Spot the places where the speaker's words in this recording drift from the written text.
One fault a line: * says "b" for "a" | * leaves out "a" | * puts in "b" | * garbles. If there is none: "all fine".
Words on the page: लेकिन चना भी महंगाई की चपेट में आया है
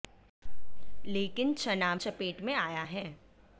* leaves out "भी महंगाई की"